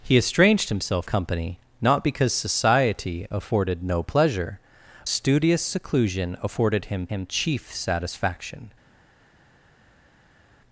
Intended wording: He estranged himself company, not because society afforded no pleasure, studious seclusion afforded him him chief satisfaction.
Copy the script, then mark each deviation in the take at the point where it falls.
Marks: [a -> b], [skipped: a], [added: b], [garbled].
He estranged himself company, not because society afforded no pleasure, studious seclusion afforded him him chief satisfaction.